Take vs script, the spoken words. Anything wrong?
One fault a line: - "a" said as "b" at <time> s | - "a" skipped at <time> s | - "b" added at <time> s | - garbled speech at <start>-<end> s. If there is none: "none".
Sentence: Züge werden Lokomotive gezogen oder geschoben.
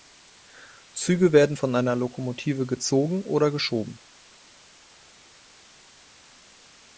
- "von einer" added at 1.5 s